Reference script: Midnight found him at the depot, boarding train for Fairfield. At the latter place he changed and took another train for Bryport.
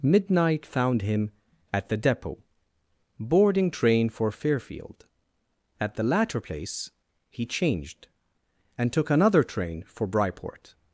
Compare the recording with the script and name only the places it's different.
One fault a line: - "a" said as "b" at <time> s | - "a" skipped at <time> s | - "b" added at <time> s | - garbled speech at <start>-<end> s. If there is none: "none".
none